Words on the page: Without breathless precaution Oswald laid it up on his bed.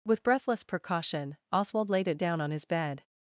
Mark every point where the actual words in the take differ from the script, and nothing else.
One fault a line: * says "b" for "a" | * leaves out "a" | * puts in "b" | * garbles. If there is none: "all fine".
* says "With" for "Without"
* says "down" for "up"